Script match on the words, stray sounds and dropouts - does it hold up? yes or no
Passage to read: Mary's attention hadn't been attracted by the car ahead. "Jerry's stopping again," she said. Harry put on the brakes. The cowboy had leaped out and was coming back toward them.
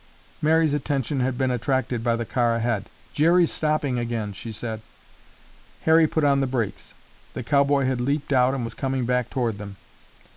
no